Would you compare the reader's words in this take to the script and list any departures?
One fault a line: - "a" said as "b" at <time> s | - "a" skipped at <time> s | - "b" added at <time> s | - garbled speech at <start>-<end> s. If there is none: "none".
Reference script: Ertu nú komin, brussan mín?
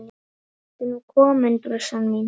none